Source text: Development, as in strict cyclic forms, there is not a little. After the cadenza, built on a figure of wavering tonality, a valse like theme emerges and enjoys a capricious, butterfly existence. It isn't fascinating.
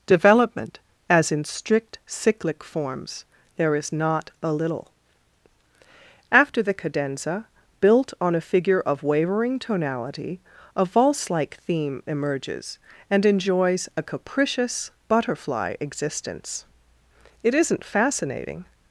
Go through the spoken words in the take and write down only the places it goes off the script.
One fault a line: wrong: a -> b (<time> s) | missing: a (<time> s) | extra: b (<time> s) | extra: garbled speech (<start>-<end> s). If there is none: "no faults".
no faults